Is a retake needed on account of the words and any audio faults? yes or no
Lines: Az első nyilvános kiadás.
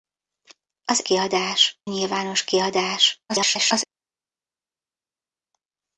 yes